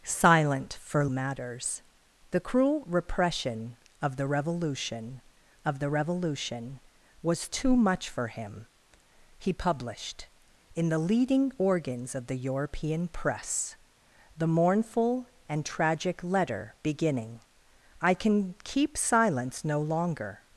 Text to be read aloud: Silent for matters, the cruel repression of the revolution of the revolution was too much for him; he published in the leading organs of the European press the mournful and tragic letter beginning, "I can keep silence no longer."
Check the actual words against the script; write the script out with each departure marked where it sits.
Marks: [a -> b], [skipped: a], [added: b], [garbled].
Silent for matters, the cruel repression of the revolution of the revolution was too much for him; he published in the leading organs of the European press the mournful and tragic letter beginning, "I can keep silence no longer."